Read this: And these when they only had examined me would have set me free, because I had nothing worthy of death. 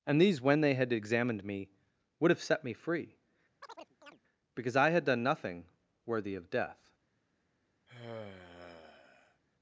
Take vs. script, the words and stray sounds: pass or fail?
fail